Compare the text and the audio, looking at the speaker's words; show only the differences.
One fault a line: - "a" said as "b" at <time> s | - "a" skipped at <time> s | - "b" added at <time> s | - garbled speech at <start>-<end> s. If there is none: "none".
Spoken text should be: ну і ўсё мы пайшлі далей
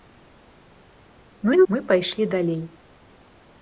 - "ўсё" skipped at 1.6 s